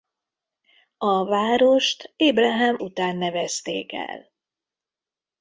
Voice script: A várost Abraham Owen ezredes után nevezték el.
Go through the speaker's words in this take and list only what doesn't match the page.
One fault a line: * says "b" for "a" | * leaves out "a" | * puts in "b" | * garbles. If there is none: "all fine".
* leaves out "Owen ezredes"